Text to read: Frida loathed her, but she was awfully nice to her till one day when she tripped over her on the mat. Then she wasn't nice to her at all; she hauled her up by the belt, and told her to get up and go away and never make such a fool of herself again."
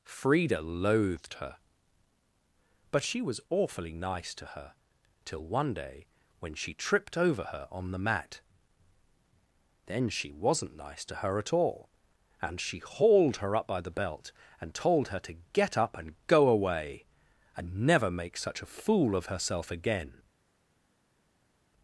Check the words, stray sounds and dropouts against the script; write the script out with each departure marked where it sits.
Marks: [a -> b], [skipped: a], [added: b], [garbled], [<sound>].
Frida loathed her, but she was awfully nice to her till one day when she tripped over her on the mat. Then she wasn't nice to her at all; [added: and] she hauled her up by the belt, and told her to get up and go away and never make such a fool of herself again."